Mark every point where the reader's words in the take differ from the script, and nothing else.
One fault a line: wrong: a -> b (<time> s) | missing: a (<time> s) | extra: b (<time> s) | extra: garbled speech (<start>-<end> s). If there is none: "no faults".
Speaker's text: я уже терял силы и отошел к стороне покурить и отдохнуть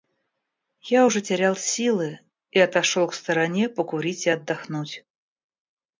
no faults